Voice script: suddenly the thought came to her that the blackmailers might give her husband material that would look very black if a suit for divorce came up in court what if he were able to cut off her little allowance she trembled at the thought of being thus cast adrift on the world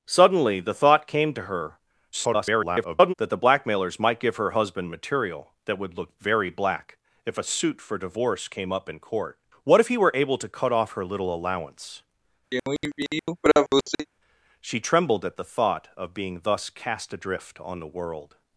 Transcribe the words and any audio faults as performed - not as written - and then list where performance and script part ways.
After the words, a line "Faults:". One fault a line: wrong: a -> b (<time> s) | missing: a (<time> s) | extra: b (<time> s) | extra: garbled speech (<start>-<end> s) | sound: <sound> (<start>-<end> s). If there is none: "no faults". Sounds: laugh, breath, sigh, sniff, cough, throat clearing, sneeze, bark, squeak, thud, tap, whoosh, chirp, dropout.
suddenly the thought came to her [garbled] that the blackmailers might give her husband material that would look very black if a suit for divorce came up in court what if he were able to cut off her little allowance she trembled at the thought of being thus cast adrift on the world
Faults:
extra: garbled speech (2.1-3.1 s)
sound: throat clearing (12.5-14.1 s)